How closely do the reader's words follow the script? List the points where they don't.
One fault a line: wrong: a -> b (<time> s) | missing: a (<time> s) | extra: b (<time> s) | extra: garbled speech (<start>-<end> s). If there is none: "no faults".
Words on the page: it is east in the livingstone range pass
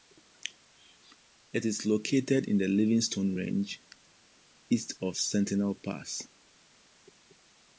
wrong: east -> located (1.9 s)
extra: east of sentinel (4.7 s)